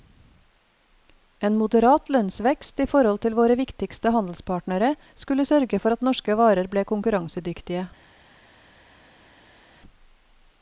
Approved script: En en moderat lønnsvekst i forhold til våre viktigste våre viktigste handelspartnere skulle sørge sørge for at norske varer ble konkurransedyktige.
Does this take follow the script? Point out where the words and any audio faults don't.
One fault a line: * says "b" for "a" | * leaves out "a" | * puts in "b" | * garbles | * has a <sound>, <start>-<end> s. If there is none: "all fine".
* leaves out "en"
* leaves out "våre viktigste"
* leaves out "sørge"